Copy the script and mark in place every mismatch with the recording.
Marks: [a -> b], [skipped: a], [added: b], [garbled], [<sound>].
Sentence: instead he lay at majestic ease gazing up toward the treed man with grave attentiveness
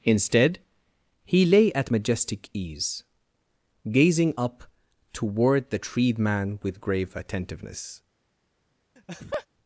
instead he lay at majestic ease gazing up toward the treed man with grave attentiveness [laugh]